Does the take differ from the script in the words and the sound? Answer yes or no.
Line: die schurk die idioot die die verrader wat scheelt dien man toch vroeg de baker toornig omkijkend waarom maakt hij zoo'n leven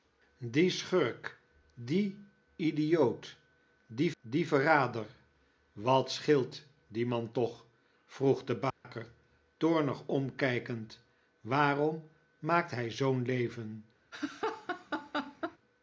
yes